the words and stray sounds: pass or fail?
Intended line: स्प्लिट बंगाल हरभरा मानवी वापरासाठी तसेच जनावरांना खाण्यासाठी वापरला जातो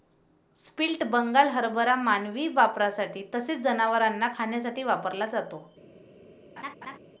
fail